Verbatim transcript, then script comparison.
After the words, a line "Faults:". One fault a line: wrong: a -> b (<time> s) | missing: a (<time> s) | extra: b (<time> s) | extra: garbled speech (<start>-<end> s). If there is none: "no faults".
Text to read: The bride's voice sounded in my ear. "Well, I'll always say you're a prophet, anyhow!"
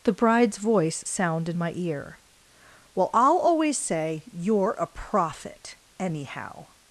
The bride's voice sound in my ear. "Well, I'll always say you're a prophet, anyhow!"
Faults:
wrong: sounded -> sound (1.0 s)